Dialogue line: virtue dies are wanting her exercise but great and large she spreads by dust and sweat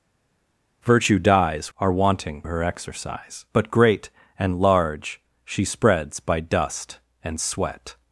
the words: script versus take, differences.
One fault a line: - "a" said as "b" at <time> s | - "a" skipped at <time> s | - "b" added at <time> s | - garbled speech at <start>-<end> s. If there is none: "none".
none